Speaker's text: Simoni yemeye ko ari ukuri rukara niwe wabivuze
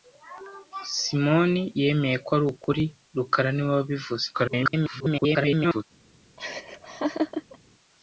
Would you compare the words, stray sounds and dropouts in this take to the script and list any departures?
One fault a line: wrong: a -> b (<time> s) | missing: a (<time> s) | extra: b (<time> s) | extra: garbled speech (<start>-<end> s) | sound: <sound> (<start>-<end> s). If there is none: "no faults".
extra: garbled speech (4.3-5.8 s)
sound: laugh (6.4-7.6 s)